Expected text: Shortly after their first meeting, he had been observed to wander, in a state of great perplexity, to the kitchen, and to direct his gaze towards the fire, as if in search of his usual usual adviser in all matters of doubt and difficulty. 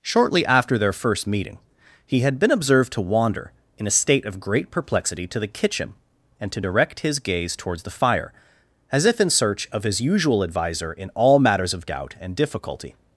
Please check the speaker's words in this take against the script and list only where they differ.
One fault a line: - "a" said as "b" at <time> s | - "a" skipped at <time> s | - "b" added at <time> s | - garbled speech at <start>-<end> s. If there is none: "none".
- "usual" skipped at 10.4 s